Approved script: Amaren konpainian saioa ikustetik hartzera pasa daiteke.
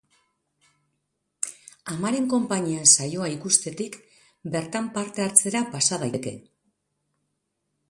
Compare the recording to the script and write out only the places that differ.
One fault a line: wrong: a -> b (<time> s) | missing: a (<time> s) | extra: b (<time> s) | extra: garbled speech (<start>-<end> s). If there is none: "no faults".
extra: bertan parte (4.6 s)